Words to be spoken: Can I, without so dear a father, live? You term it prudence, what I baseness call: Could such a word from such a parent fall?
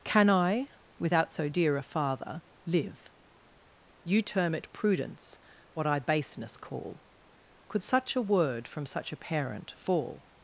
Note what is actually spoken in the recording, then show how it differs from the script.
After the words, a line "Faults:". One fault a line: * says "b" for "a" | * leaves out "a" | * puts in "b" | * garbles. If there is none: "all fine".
Can I, without so dear a father, live? You term it prudence, what I baseness call: Could such a word from such a parent fall?
Faults:
all fine